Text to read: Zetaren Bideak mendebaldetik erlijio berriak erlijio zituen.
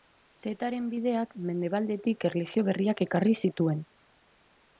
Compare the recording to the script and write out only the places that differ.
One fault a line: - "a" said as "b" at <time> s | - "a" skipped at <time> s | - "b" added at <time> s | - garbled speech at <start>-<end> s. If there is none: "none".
- "erlijio" said as "ekarri" at 3.1 s